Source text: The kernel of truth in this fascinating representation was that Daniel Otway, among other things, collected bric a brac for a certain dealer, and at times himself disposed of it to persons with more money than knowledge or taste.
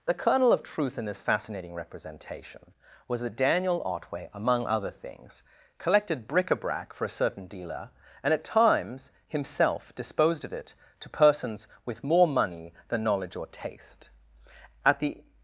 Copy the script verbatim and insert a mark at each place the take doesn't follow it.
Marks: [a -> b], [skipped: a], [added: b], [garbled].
The kernel of truth in this fascinating representation was that Daniel Otway, among other things, collected bric a brac for a certain dealer, and at times himself disposed of it to persons with more money than knowledge or taste. [added: At the]